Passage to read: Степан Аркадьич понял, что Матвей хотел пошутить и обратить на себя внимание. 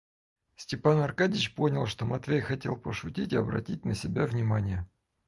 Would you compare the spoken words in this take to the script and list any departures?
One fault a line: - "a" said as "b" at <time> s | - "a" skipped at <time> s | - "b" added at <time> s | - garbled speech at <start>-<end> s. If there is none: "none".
none